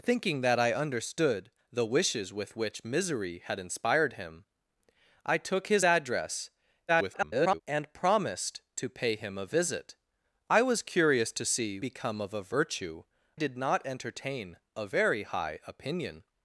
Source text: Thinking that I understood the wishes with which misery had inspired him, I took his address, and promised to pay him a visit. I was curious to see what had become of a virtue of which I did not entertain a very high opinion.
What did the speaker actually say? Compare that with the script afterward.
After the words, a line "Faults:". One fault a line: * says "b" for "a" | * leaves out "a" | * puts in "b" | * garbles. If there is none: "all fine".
Thinking that I understood the wishes with which misery had inspired him, I took his address, [garbled] and promised to pay him a visit. I was curious to see become of a virtue did not entertain a very high opinion.
Faults:
* garbles
* leaves out "what had"
* leaves out "of which I"